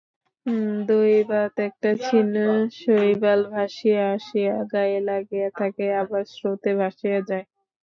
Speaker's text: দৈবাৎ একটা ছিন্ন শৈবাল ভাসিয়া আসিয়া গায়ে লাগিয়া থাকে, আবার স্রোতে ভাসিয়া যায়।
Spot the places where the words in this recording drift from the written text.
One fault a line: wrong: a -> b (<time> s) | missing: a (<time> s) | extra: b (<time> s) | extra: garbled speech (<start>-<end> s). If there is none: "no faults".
no faults